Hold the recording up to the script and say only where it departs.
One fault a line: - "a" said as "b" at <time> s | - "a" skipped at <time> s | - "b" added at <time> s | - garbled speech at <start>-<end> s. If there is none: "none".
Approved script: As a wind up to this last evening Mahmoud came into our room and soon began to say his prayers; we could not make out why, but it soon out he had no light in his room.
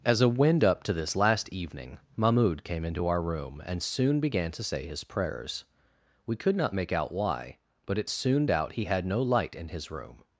none